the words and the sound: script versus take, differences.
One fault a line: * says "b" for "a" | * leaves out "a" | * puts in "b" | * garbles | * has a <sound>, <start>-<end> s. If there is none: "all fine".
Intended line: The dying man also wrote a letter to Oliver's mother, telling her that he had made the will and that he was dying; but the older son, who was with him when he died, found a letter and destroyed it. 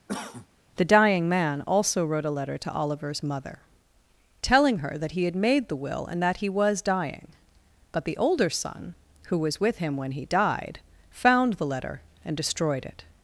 * has a cough, 0.1-0.5 s
* says "the" for "a"